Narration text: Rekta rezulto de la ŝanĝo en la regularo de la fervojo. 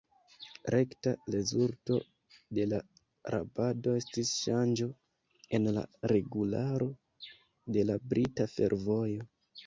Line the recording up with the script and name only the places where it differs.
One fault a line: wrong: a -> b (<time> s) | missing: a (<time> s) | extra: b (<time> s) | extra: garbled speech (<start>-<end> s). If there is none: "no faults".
extra: rabado estis (3.3 s)
extra: brita (8.1 s)